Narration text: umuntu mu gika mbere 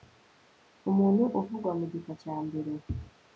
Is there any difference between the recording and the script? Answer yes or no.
yes